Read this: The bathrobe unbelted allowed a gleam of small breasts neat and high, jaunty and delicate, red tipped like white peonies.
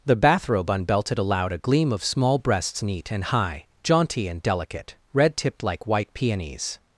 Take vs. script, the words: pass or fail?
pass